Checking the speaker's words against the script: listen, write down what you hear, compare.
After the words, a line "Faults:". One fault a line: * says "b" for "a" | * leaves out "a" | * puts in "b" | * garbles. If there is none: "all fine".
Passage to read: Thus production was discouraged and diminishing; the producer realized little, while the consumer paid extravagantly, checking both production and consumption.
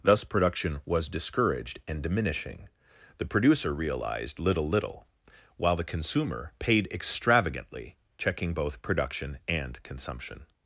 Thus production was discouraged and diminishing; the producer realized little little, while the consumer paid extravagantly, checking both production and consumption.
Faults:
* puts in "little"